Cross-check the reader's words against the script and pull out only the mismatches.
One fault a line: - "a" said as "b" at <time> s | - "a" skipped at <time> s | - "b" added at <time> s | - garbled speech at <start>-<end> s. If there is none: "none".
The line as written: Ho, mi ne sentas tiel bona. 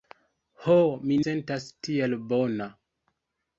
- "ne" skipped at 1.2 s